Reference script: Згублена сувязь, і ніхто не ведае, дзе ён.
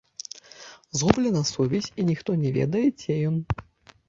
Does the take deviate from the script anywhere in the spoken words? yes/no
no